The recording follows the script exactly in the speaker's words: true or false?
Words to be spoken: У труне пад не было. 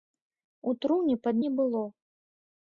true